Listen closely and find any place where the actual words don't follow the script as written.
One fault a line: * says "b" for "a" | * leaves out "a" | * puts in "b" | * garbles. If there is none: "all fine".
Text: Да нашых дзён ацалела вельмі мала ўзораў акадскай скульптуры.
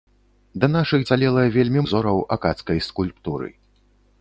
* leaves out "дзён"
* leaves out "мала"